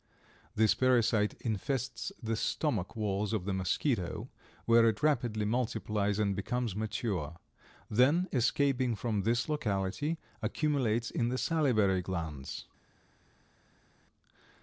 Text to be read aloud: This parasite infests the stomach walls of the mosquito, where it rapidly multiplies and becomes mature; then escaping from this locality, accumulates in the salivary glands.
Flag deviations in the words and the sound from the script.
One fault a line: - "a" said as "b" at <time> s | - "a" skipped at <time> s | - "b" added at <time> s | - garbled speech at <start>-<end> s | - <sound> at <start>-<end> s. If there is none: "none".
none